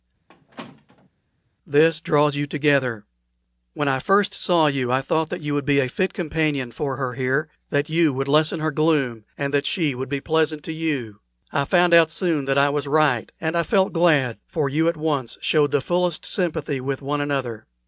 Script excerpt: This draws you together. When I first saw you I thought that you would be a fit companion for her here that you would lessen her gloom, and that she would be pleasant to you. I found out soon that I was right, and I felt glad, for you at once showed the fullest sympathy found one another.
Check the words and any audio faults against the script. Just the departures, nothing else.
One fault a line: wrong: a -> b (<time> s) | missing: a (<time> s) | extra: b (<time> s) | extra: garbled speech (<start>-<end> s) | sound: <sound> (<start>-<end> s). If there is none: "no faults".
sound: squeak (0.3-1.1 s)
wrong: found -> with (16.8 s)